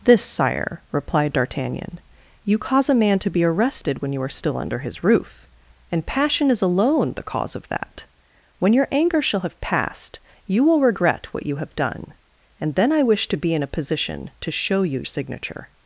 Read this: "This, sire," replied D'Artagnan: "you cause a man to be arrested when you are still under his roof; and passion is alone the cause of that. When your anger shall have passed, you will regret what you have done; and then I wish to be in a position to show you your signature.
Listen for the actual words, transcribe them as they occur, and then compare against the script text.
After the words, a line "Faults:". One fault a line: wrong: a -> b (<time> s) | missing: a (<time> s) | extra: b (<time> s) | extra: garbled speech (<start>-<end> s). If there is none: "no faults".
"This, sire," replied D'Artagnan: "you cause a man to be arrested when you are still under his roof; and passion is alone the cause of that. When your anger shall have passed, you will regret what you have done; and then I wish to be in a position to show you signature.
Faults:
missing: your (15.0 s)